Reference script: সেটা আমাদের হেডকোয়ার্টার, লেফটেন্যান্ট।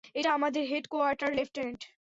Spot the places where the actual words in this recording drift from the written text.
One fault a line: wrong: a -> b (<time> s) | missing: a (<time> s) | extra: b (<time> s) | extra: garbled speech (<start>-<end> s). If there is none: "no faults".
wrong: সেটা -> এটা (0.1 s)